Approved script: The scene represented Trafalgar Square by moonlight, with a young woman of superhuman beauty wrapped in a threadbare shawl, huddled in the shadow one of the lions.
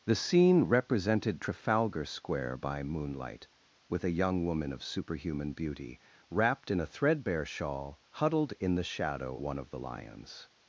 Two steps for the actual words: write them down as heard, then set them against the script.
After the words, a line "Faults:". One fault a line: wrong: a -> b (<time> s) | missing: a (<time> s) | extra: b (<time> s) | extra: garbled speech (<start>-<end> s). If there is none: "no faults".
The scene represented Trafalgar Square by moonlight, with a young woman of superhuman beauty wrapped in a threadbare shawl, huddled in the shadow one of the lions.
Faults:
no faults